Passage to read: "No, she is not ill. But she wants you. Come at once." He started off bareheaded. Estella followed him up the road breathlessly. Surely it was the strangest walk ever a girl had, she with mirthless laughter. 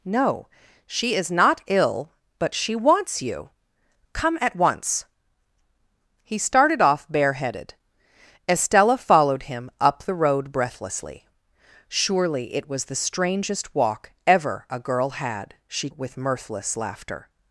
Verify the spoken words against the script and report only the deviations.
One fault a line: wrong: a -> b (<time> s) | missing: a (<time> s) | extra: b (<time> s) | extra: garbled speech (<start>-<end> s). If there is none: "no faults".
no faults